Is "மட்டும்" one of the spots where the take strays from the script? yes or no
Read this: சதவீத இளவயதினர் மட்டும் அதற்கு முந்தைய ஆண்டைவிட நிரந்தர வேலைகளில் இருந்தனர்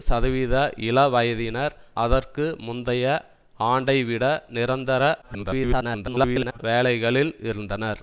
yes